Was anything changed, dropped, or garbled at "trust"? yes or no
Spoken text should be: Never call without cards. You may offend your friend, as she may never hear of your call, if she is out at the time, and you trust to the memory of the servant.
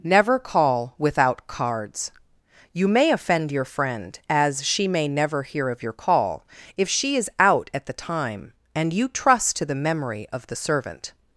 no